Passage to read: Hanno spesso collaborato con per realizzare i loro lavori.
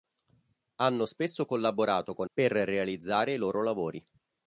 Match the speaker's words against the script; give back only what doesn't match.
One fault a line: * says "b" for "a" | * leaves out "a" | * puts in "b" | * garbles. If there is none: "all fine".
all fine